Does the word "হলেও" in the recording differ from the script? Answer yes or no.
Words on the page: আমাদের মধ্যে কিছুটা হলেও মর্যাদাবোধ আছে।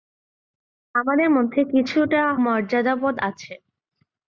yes